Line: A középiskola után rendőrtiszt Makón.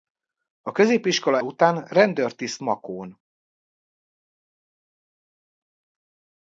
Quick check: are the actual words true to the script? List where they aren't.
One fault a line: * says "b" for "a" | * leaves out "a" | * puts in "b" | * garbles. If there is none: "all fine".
all fine